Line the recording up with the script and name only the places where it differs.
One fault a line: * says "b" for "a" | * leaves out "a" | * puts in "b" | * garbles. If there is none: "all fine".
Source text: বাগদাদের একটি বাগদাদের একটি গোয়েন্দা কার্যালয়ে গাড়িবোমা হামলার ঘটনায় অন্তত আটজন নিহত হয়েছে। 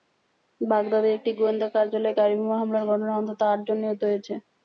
* leaves out "বাগদাদের একটি"